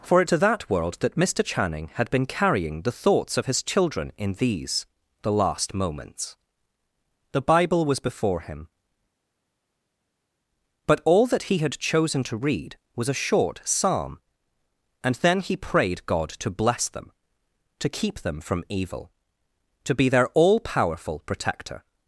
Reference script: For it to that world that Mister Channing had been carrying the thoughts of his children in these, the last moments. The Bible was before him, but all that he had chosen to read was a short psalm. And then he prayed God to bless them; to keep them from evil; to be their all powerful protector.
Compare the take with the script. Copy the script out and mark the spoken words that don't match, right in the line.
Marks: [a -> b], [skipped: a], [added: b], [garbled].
For it to that world that Mister Channing had been carrying the thoughts of his children in these, the last moments. The Bible was before him, but all that he had chosen to read was a short psalm. And then he prayed God to bless them; to keep them from evil; to be their all powerful protector.